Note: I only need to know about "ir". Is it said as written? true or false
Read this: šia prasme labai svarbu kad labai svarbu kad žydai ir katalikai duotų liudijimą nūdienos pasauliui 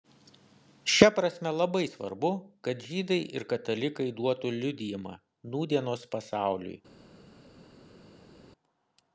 true